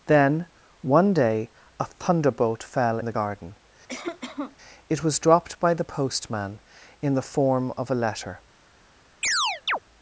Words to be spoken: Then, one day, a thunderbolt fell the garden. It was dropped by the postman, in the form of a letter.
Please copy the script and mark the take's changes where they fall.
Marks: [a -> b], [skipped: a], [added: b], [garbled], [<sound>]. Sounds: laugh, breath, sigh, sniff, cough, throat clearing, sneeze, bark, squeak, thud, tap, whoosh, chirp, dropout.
Then, one day, a thunderbolt fell the garden. [cough] It was dropped by the postman, in the form of a letter. [chirp]